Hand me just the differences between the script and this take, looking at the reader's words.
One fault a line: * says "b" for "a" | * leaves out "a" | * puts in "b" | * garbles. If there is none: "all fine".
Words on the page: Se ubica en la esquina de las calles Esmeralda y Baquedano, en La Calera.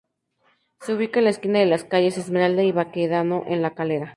all fine